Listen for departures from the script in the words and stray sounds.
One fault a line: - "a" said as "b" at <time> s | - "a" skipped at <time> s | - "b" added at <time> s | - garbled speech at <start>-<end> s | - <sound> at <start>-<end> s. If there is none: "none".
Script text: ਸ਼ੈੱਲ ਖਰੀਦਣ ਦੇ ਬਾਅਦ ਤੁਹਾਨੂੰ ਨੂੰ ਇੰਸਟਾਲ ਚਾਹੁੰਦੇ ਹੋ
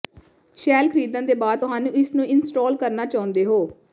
- "ਇਸ" added at 1.9 s
- "ਕਰਨਾ" added at 2.8 s